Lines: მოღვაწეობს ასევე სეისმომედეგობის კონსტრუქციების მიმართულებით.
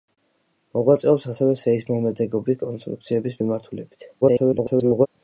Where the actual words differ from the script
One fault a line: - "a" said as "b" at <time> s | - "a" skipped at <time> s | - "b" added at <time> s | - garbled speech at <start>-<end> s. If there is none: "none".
- garbled speech at 4.2-5.1 s